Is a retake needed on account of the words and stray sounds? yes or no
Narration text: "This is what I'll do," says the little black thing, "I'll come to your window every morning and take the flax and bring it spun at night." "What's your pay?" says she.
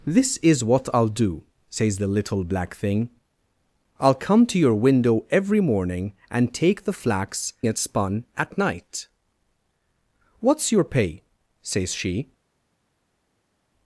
yes